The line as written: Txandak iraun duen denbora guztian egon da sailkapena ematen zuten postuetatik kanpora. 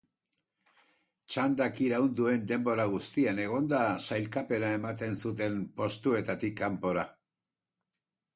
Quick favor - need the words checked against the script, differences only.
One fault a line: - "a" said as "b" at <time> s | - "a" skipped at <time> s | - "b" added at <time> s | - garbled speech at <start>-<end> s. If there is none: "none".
none